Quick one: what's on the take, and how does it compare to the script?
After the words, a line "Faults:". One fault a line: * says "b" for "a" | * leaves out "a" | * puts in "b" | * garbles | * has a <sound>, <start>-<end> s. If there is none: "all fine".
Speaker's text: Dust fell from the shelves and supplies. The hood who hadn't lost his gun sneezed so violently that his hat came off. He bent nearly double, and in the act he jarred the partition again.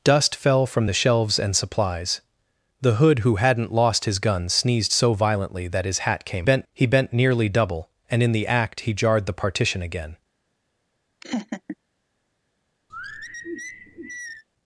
Dust fell from the shelves and supplies. The hood who hadn't lost his gun sneezed so violently that his hat came bent. He bent nearly double, and in the act he jarred the partition again.
Faults:
* says "bent" for "off"
* has a laugh, 11.2-11.8 s
* has a sigh, 12.9-14.4 s